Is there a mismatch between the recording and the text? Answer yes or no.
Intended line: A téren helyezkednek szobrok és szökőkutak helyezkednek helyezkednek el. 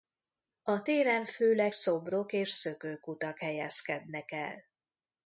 yes